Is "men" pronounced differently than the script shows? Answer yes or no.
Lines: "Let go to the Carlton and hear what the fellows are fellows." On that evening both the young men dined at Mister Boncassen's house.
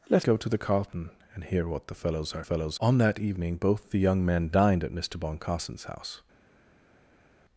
no